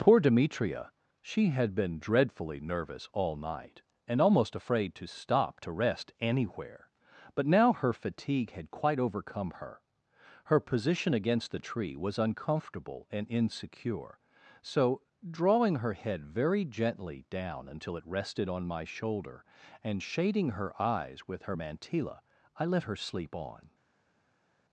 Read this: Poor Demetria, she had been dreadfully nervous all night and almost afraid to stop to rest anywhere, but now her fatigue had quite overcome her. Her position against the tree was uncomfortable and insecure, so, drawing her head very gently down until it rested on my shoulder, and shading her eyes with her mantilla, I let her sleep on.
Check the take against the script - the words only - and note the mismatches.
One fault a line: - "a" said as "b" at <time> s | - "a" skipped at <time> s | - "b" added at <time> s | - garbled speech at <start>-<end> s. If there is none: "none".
none